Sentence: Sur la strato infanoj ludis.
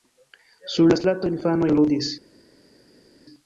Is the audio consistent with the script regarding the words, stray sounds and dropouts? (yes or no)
yes